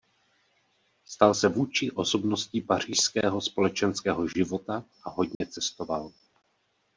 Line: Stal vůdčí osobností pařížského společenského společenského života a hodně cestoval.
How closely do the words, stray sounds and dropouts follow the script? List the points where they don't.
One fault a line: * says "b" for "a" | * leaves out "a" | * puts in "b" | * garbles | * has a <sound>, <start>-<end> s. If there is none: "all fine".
* puts in "se"
* leaves out "společenského"
* has a dropout, 5.3-5.4 s